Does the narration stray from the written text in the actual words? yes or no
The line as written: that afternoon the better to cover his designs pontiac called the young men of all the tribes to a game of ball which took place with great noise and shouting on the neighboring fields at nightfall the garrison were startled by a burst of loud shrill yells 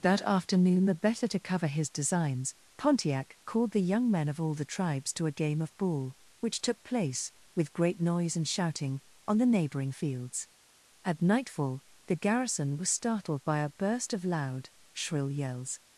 yes